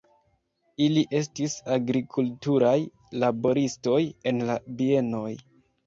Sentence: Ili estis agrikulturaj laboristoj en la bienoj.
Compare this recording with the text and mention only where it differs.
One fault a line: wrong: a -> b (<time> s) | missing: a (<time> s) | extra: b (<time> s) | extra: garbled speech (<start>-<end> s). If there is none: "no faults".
no faults